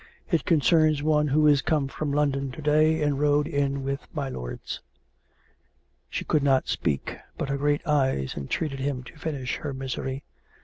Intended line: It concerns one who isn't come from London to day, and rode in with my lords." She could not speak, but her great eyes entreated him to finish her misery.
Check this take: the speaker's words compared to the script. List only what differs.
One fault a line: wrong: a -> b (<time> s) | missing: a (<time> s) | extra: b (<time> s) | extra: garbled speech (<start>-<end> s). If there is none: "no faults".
wrong: isn't -> is (1.4 s)